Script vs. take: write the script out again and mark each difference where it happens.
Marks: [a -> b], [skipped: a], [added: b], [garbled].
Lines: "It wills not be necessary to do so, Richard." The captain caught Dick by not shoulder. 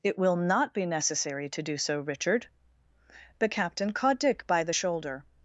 "It [wills -> will] not be necessary to do so, Richard." The captain caught Dick by [not -> the] shoulder.